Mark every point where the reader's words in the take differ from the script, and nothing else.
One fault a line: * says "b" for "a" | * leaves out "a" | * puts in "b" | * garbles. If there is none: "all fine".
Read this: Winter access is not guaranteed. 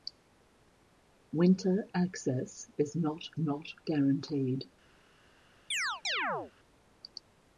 * puts in "not"